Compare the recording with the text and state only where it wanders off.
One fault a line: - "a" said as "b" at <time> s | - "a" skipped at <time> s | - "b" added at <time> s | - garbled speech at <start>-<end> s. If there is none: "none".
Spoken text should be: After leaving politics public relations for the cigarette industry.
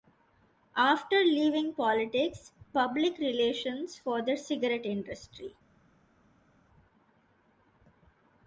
none